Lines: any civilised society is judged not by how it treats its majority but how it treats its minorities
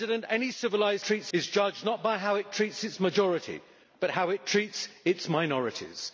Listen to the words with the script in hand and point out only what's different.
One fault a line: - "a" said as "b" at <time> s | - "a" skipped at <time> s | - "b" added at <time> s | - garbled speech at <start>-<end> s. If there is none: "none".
- "society" said as "treats" at 1.0 s